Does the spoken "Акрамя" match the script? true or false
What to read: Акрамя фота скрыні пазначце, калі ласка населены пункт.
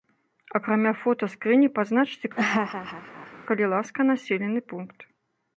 true